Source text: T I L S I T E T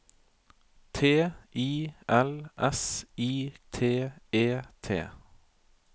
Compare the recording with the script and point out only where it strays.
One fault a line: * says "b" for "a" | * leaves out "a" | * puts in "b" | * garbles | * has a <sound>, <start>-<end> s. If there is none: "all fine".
all fine